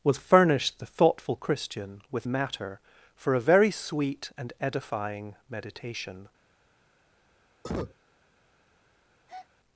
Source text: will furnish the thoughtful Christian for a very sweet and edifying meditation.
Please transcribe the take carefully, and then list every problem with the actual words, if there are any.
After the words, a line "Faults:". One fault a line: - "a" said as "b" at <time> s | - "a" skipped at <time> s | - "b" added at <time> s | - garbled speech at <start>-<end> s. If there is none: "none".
will furnish the thoughtful Christian with matter for a very sweet and edifying meditation.
Faults:
- "with matter" added at 2.1 s